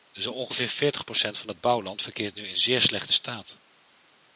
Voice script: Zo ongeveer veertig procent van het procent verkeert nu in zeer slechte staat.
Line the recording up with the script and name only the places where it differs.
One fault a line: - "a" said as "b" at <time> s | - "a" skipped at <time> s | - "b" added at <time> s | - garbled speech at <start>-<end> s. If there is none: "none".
- "procent" said as "bouwland" at 1.6 s